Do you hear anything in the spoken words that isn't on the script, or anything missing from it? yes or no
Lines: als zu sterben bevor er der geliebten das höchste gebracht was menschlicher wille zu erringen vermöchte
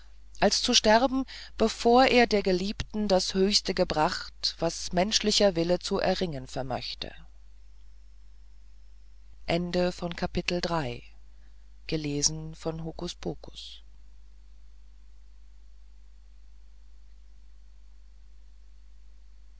no